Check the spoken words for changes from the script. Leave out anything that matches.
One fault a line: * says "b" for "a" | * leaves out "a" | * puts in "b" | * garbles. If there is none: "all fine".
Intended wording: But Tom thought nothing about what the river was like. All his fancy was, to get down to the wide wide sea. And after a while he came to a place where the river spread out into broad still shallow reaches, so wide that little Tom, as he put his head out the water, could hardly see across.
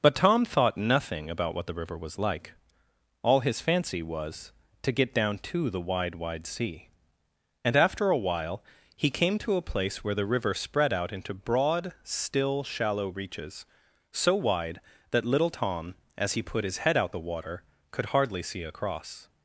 all fine